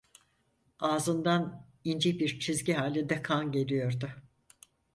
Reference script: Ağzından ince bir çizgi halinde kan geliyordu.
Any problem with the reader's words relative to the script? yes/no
no